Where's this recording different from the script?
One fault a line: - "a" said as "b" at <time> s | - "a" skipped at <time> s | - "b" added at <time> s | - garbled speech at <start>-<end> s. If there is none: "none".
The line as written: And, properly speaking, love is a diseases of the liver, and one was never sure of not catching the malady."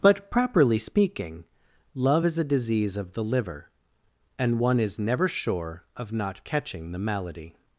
- "And" said as "But" at 0.0 s
- "diseases" said as "disease" at 2.4 s
- "was" said as "is" at 4.8 s